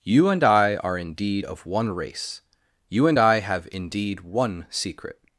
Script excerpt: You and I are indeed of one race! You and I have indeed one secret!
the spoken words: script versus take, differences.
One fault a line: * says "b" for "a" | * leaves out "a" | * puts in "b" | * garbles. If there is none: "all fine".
all fine